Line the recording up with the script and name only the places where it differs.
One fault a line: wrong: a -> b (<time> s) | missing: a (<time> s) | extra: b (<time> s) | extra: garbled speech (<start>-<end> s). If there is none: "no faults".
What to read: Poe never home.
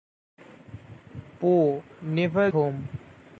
no faults